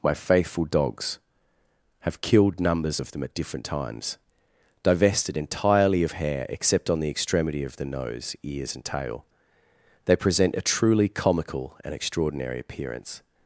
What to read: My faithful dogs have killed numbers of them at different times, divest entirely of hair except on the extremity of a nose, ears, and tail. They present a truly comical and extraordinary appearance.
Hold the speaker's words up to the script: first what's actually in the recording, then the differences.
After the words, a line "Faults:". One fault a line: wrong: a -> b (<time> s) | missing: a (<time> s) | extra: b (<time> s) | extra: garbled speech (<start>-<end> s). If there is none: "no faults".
My faithful dogs have killed numbers of them at different times, divested entirely of hair except on the extremity of the nose, ears, and tail. They present a truly comical and extraordinary appearance.
Faults:
wrong: divest -> divested (4.8 s)
wrong: a -> the (7.8 s)